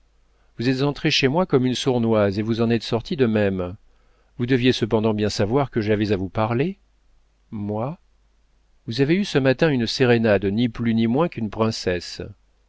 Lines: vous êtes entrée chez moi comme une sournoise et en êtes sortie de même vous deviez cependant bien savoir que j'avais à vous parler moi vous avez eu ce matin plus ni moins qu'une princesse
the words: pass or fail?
fail